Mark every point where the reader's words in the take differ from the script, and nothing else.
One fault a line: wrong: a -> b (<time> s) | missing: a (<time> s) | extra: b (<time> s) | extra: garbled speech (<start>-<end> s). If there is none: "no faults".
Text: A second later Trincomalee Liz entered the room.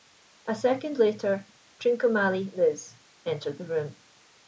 no faults